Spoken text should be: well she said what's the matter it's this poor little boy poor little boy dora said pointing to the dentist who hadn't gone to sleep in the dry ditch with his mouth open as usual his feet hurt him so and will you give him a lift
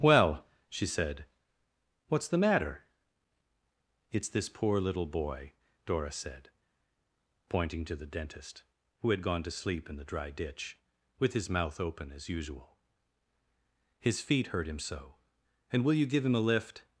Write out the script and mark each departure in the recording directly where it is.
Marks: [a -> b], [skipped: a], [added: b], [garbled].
well she said what's the matter it's this poor little boy [skipped: poor little boy] dora said pointing to the dentist who [hadn't -> had] gone to sleep in the dry ditch with his mouth open as usual his feet hurt him so and will you give him a lift